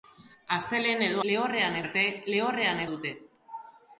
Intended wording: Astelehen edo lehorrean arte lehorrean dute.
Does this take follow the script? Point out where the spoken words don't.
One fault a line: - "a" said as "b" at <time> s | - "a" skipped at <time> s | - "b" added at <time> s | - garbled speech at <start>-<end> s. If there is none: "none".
none